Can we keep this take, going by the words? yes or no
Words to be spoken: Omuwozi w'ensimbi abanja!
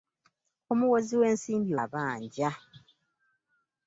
yes